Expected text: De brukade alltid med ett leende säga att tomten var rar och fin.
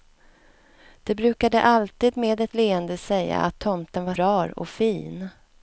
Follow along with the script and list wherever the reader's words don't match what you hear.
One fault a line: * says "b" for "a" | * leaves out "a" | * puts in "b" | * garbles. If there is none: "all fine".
all fine